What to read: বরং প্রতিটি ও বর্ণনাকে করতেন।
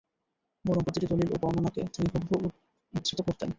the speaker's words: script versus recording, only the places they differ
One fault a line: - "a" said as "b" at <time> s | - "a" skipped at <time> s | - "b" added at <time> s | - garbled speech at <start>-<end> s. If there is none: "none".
- "দলীল" added at 1.1 s
- "তিনি হুবহু উদ্ধৃত" added at 1.9 s